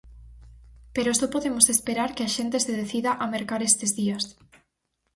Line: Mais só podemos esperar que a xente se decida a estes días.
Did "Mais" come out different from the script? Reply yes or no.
yes